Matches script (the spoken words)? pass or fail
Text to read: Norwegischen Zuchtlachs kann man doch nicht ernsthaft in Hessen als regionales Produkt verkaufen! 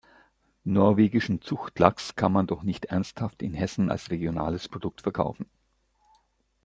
pass